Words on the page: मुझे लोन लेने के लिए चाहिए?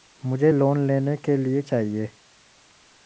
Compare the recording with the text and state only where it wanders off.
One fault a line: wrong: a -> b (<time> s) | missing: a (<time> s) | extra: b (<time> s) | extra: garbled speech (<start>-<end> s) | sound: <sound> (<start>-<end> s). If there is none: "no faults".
no faults